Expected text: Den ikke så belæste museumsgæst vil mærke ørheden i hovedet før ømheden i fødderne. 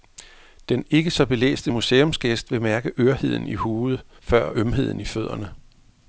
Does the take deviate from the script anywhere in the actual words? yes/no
no